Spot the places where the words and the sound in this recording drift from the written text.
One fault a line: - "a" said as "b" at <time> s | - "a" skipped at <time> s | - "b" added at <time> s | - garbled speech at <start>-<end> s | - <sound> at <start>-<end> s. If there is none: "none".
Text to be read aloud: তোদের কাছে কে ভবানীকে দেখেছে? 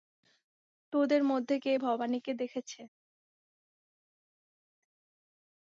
- "কাছে" said as "মধ্যে" at 1.2 s